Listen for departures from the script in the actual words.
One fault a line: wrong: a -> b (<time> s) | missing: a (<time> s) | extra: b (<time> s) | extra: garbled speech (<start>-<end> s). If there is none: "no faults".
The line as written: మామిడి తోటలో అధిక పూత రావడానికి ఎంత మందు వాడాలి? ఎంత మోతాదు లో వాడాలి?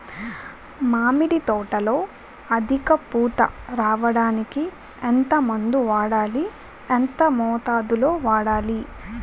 no faults